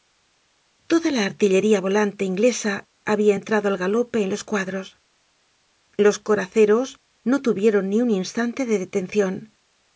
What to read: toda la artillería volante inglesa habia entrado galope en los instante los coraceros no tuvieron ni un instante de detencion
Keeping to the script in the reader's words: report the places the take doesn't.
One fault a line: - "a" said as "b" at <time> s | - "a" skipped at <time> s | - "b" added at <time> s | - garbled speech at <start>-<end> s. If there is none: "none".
- "al" added at 3.7 s
- "instante" said as "cuadros" at 4.4 s